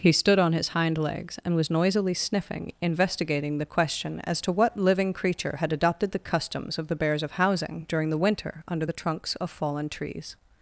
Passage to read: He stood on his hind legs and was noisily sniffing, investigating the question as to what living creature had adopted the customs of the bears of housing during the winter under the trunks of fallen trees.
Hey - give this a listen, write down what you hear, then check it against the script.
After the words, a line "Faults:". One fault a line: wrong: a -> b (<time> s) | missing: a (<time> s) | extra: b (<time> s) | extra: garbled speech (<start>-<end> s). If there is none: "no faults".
He stood on his hind legs and was noisily sniffing, investigating the question as to what living creature had adopted the customs of the bears of housing during the winter under the trunks of fallen trees.
Faults:
no faults